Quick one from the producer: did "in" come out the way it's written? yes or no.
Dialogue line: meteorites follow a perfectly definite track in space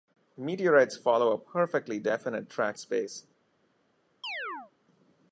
no